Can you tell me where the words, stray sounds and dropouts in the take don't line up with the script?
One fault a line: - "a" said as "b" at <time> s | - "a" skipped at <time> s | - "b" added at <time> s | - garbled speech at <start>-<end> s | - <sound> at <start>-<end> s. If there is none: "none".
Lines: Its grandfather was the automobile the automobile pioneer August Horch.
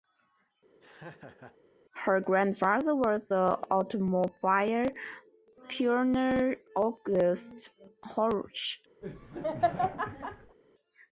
- laugh at 0.8-1.6 s
- "Its" said as "Her" at 1.9 s
- "the automobile" skipped at 4.9 s
- laugh at 9.0-10.6 s